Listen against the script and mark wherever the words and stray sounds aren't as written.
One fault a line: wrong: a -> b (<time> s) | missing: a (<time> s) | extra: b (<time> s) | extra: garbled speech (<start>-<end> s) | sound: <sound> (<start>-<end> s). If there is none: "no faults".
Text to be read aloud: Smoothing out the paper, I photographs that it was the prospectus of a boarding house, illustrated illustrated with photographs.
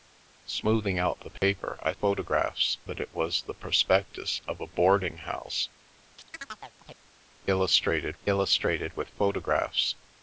sound: dropout (1.4-1.4 s)
sound: chirp (6.2-7.0 s)